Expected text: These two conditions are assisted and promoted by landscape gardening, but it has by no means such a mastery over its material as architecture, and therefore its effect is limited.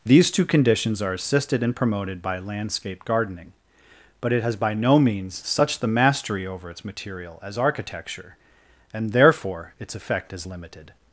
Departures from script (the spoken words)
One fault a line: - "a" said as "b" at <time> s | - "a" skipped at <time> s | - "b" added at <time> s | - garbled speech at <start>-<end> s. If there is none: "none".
- "a" said as "the" at 5.8 s